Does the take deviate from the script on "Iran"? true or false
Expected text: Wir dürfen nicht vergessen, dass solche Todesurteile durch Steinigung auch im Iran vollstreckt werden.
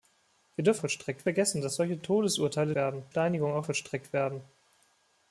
true